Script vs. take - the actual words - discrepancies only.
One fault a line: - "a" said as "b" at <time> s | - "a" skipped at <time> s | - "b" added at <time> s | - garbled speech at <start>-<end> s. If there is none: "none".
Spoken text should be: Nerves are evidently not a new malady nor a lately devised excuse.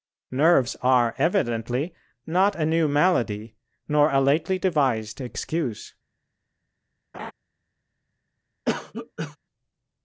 none